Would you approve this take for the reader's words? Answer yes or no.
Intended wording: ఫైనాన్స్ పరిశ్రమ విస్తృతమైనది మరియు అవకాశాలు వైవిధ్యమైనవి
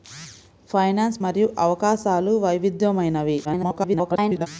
no